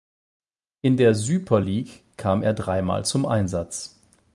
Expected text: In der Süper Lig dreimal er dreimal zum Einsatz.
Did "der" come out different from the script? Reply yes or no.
no